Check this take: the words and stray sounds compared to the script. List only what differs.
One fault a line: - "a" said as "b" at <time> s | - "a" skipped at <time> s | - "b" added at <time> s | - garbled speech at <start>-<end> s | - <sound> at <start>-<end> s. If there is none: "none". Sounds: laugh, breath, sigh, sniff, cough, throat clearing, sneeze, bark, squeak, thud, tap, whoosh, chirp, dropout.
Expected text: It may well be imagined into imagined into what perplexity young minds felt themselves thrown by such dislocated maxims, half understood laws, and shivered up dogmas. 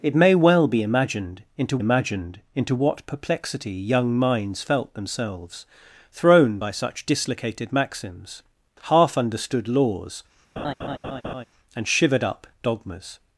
- laugh at 10.6-11.5 s